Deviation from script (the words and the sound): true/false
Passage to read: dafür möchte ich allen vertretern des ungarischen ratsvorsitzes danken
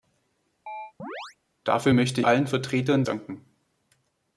true